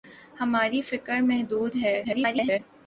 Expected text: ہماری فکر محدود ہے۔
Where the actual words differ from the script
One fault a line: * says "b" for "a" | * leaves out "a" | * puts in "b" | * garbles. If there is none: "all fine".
* garbles